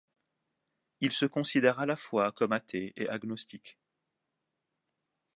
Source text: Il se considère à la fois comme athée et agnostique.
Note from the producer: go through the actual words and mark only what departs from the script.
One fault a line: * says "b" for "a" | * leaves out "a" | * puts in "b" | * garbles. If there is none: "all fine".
all fine